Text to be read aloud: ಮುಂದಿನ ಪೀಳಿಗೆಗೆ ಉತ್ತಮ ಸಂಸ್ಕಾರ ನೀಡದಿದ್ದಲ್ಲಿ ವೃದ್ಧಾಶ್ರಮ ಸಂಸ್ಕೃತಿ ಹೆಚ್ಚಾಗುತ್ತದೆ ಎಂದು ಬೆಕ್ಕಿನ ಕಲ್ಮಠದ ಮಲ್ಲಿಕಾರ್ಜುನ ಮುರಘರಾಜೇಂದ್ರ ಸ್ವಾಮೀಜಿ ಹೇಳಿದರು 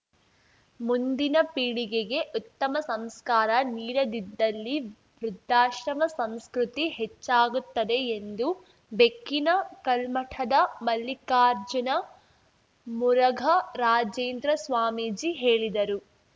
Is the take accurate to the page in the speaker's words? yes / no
yes